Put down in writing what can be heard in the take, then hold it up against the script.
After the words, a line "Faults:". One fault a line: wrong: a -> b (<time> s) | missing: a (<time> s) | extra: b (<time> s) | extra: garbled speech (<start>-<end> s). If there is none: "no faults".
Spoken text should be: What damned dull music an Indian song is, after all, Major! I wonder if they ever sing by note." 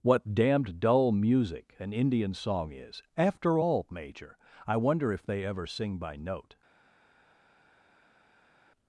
What damned dull music an Indian song is, after all, Major! I wonder if they ever sing by note."
Faults:
no faults